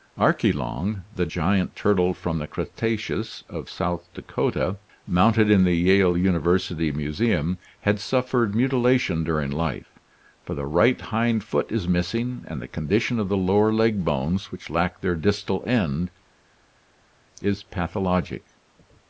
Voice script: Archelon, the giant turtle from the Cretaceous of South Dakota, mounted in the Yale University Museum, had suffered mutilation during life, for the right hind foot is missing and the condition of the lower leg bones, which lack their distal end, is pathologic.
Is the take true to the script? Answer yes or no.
yes